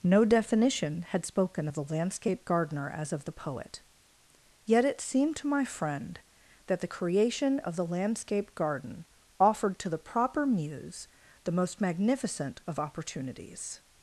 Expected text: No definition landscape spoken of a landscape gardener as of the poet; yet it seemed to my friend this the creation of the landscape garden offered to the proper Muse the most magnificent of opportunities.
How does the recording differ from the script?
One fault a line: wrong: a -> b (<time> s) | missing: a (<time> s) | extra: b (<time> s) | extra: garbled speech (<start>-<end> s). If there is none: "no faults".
wrong: landscape -> had (1.1 s)
wrong: a -> the (1.7 s)
wrong: this -> that (6.7 s)